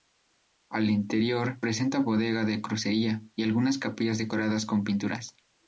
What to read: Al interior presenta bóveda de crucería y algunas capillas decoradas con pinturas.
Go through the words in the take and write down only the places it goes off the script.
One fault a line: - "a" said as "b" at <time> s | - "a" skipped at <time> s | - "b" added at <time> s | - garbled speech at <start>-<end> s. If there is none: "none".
none